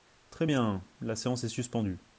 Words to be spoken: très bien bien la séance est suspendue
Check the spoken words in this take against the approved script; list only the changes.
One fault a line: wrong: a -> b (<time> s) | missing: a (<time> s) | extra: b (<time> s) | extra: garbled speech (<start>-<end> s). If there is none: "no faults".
missing: bien (0.8 s)